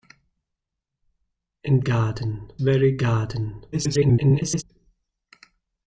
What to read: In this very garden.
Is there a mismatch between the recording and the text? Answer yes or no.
yes